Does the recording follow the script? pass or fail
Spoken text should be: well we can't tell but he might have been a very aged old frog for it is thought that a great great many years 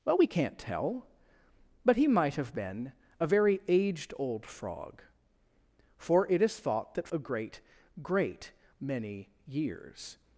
pass